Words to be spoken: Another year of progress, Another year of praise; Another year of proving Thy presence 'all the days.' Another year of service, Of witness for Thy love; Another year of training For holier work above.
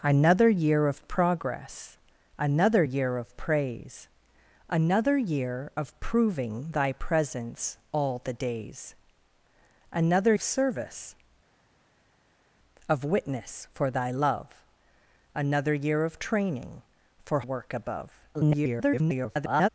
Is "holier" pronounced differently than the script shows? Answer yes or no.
yes